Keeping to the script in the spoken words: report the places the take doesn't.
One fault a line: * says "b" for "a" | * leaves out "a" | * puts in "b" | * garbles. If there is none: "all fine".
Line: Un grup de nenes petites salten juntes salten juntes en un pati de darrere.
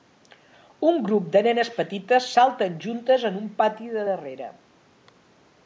* leaves out "salten juntes"